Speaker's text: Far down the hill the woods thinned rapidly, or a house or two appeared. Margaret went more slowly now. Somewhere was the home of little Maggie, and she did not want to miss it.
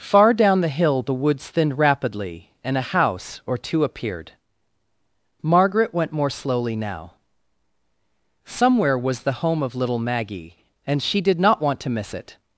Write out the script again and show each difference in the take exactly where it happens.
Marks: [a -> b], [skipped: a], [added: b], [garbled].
Far down the hill the woods thinned rapidly, [or -> and] a house or two appeared. Margaret went more slowly now. Somewhere was the home of little Maggie, and she did not want to miss it.